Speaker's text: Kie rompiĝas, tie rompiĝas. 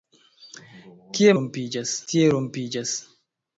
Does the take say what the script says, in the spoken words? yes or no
yes